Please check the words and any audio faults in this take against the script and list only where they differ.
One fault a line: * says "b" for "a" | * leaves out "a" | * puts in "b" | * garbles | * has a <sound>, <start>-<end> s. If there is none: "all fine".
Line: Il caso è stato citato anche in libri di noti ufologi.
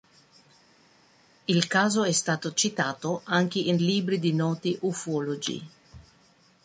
all fine